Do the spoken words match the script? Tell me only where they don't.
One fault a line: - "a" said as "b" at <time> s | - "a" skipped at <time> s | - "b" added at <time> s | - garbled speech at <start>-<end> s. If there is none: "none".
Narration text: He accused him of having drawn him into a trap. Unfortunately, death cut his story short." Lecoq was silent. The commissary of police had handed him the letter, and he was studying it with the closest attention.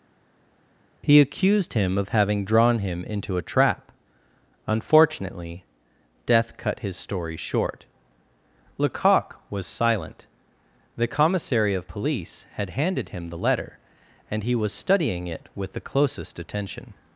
none